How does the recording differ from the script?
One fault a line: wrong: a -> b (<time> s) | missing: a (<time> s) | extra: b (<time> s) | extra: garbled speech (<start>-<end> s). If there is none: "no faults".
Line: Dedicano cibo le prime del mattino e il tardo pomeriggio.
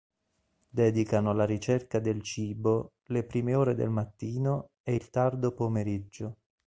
extra: alla ricerca del (1.3 s)
extra: ore (3.5 s)